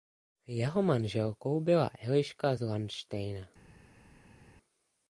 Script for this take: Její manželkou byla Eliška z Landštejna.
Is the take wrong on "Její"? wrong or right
wrong